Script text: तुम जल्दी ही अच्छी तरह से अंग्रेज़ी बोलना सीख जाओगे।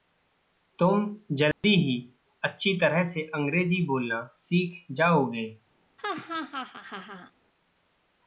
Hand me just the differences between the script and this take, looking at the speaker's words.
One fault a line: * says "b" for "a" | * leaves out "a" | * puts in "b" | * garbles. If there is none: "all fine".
all fine